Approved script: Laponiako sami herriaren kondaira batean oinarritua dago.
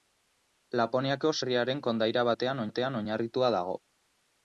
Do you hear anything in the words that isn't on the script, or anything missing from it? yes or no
yes